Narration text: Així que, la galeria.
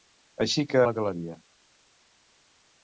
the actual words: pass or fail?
pass